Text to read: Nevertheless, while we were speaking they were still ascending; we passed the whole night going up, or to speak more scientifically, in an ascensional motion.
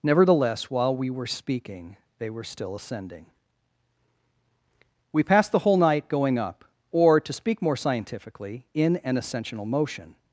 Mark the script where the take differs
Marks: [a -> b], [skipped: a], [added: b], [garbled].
Nevertheless, while we were speaking they were still ascending; we passed the whole night going up, or to speak more scientifically, in an ascensional motion.